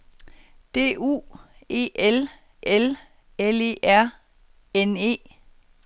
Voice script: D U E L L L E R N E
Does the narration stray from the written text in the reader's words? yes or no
no